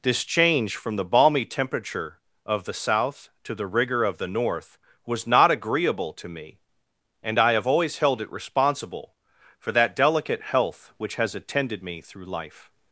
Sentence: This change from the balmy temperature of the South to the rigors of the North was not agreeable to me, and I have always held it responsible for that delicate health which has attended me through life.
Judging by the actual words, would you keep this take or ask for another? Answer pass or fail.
fail